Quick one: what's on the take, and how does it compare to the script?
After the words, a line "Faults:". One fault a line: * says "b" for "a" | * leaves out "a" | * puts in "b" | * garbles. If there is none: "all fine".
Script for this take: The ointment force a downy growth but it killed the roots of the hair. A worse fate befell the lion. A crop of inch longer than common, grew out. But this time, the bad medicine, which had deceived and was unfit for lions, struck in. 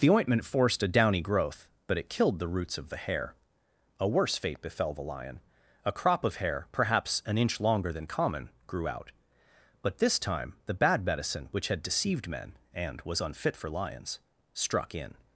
The ointment forced a downy growth but it killed the roots of the hair. A worse fate befell the lion. A crop of hair, perhaps an inch longer than common, grew out. But this time, the bad medicine, which had deceived men, and was unfit for lions, struck in.
Faults:
* says "forced" for "force"
* puts in "hair perhaps an"
* puts in "men"